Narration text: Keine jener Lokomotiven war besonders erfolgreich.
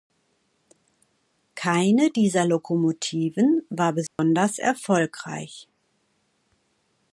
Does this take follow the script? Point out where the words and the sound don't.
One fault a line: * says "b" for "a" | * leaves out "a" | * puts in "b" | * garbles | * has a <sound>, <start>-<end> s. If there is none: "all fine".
* says "dieser" for "jener"
* has a dropout, 4.1-4.2 s